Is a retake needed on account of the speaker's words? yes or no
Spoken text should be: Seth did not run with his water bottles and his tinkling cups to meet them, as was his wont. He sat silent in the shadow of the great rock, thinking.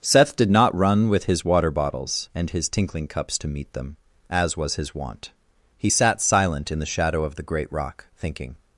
no